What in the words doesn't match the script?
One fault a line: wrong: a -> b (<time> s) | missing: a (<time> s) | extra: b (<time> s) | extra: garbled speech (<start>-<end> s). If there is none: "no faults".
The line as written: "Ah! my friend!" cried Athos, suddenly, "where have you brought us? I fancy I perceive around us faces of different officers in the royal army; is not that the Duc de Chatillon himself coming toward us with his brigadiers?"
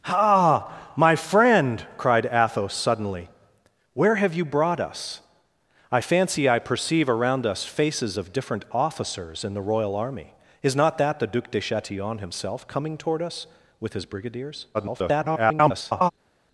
extra: garbled speech (14.7-16.1 s)